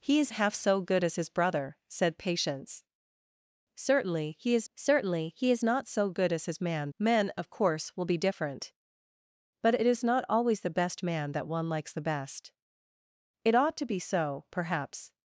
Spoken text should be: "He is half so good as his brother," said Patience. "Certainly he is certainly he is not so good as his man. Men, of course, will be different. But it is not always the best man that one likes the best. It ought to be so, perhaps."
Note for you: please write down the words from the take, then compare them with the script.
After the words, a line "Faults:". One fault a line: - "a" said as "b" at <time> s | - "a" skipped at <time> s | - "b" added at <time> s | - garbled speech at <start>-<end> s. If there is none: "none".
"He is half so good as his brother," said Patience. "Certainly he is certainly he is not so good as his man. Men, of course, will be different. But it is not always the best man that one likes the best. It ought to be so, perhaps."
Faults:
none